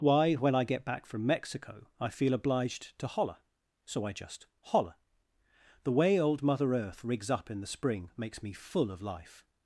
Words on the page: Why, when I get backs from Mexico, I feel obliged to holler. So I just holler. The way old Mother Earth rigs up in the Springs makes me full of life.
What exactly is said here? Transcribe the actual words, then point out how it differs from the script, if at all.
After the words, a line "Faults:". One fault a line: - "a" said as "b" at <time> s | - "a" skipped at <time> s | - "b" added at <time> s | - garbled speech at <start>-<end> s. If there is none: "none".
Why, when I get back from Mexico, I feel obliged to holler. So I just holler. The way old Mother Earth rigs up in the Spring makes me full of life.
Faults:
- "backs" said as "back" at 0.8 s
- "Springs" said as "Spring" at 7.7 s